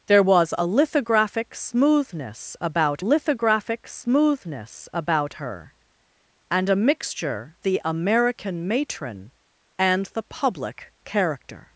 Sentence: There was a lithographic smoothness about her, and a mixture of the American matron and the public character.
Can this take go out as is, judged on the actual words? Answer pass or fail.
fail